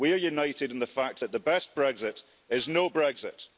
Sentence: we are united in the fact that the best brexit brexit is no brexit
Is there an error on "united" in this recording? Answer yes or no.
no